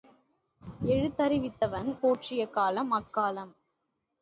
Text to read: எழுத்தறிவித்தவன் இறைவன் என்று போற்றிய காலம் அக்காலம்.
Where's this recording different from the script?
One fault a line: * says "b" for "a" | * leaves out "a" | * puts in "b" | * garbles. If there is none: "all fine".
* leaves out "இறைவன் என்று"